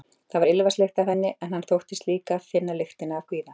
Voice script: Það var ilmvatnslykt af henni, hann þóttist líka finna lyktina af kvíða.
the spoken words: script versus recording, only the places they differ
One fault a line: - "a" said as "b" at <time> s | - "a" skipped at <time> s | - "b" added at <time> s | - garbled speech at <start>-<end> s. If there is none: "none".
- "en" added at 1.5 s